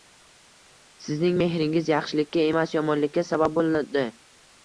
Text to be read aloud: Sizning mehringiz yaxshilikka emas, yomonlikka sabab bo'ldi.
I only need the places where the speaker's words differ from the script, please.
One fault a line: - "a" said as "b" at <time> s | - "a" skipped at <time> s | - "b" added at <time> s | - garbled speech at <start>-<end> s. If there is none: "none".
none